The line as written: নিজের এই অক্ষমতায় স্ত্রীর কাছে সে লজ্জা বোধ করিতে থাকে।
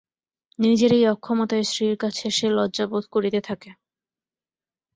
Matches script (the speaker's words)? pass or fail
pass